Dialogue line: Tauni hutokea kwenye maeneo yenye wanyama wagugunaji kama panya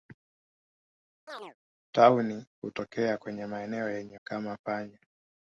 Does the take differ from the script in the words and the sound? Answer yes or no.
yes